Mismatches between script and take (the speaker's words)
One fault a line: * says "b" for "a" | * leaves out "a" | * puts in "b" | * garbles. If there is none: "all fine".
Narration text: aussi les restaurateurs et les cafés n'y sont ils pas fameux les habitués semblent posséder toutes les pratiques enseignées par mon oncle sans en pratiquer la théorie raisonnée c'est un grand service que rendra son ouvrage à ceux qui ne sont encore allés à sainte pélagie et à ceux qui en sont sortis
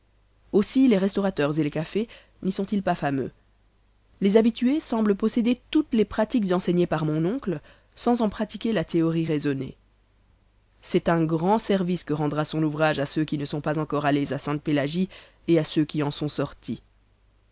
* puts in "pas"